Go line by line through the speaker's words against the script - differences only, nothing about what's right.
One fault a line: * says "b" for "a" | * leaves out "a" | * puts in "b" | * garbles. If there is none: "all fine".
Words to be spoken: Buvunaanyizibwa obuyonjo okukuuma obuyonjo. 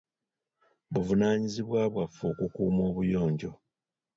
* says "bwaffe" for "obuyonjo"